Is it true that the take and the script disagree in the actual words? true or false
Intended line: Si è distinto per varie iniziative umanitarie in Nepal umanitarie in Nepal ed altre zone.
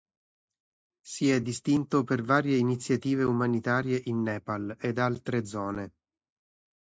true